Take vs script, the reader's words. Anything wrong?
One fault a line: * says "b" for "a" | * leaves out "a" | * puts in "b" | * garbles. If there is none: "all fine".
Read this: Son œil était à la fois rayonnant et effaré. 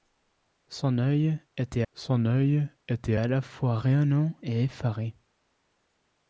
* puts in "son œil était"